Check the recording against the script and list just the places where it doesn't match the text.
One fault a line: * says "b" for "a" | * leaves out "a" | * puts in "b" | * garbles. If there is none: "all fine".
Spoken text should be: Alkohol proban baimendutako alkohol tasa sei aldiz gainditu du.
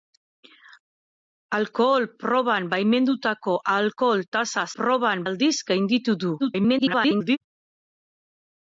* says "proban" for "sei"
* garbles